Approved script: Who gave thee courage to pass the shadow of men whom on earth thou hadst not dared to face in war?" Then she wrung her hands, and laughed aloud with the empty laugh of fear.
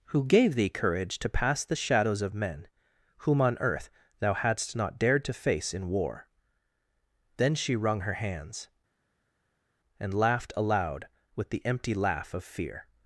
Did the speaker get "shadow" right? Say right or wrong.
wrong